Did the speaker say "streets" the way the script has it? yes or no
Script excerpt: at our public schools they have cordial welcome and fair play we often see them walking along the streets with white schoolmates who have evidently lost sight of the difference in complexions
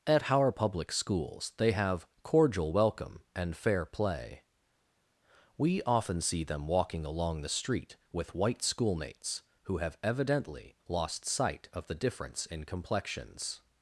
no